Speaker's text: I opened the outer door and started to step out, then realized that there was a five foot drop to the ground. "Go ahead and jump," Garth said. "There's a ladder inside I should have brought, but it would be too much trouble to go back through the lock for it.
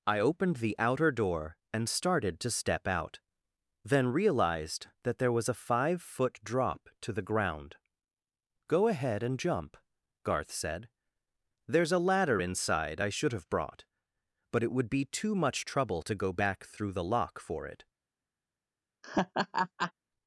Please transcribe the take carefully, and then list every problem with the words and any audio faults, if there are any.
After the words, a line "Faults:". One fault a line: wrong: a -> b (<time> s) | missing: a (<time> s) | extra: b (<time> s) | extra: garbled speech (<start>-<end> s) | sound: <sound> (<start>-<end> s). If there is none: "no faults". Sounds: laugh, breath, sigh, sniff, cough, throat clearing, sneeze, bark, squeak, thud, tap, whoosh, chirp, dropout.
I opened the outer door and started to step out, then realized that there was a five foot drop to the ground. "Go ahead and jump," Garth said. "There's a ladder inside I should have brought, but it would be too much trouble to go back through the lock for it.
Faults:
sound: laugh (19.0-19.9 s)